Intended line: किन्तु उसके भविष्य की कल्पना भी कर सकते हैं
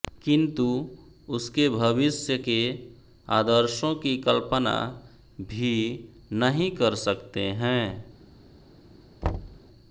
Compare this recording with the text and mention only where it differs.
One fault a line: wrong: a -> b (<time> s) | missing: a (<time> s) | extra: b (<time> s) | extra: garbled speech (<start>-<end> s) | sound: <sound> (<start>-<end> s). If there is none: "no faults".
extra: के आदर्शों (2.5 s)
extra: नहीं (6.3 s)
sound: thud (9.2-9.6 s)